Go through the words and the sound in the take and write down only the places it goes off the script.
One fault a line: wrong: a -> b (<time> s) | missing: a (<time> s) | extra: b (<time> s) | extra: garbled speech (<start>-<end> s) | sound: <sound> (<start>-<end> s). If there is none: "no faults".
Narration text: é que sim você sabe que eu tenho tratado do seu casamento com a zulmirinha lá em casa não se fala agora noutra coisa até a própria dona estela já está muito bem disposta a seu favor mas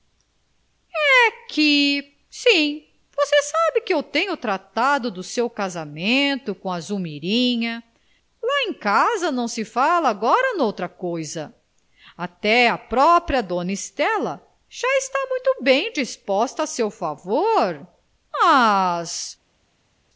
no faults